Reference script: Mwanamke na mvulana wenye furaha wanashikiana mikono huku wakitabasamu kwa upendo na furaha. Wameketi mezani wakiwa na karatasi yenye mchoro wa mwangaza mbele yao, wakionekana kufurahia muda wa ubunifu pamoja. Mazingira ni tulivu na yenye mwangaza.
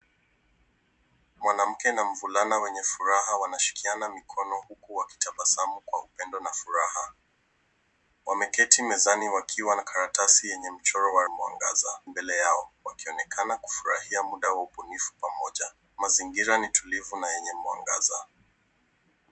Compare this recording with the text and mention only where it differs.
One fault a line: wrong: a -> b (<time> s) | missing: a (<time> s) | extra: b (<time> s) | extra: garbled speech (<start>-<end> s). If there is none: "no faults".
no faults